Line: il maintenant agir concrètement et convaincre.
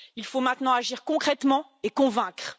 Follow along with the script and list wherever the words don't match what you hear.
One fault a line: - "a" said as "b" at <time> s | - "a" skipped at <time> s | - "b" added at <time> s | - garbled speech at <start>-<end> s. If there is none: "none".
- "faut" added at 0.2 s